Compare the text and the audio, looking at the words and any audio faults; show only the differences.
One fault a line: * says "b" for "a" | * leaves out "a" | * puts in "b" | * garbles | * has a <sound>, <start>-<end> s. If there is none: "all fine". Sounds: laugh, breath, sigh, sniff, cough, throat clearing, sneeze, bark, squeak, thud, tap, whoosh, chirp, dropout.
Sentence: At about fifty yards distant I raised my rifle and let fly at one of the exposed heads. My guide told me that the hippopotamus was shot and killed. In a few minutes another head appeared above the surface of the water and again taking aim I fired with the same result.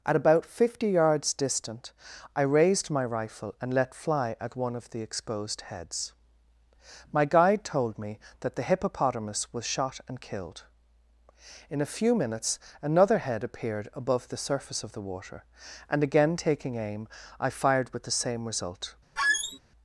* has a squeak, 19.2-19.6 s